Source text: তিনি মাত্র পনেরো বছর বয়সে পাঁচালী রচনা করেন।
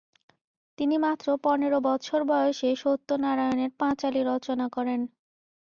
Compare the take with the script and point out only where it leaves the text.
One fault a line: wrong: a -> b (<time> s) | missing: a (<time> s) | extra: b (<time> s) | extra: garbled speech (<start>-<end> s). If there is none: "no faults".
extra: সত্যনারায়ণের (2.7 s)